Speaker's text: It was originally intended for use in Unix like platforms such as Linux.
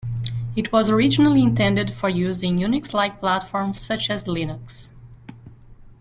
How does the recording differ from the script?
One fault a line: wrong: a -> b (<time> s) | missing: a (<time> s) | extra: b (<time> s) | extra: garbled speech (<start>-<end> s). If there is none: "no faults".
no faults